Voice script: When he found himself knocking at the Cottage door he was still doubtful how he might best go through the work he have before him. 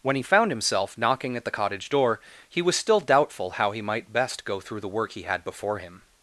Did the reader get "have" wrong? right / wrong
wrong